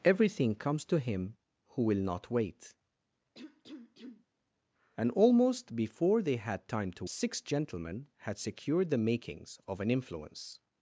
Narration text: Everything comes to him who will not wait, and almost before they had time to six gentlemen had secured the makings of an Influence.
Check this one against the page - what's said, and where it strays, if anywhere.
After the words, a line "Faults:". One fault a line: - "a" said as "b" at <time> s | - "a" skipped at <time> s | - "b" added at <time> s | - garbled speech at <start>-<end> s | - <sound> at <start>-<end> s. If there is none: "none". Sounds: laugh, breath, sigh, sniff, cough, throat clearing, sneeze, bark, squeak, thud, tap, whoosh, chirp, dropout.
Everything comes to him who will not wait, and almost before they had time to six gentlemen had secured the makings of an Influence.
Faults:
- cough at 3.3-4.3 s